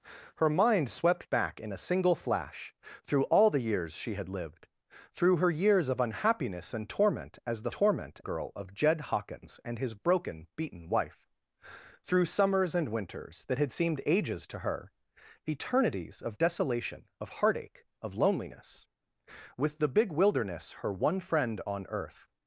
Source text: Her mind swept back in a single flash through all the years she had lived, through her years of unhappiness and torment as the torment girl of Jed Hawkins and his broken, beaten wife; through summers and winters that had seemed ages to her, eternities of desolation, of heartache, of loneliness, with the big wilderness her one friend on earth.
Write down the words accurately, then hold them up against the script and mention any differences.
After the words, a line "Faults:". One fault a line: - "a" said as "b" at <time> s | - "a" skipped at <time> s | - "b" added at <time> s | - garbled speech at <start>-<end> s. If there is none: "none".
Her mind swept back in a single flash through all the years she had lived, through her years of unhappiness and torment as the torment girl of Jed Hawkins and his broken, beaten wife; through summers and winters that had seemed ages to her, eternities of desolation, of heartache, of loneliness, with the big wilderness her one friend on earth.
Faults:
none